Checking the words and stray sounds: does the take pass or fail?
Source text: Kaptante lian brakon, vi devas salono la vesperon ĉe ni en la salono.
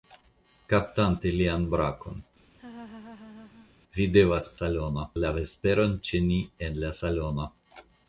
fail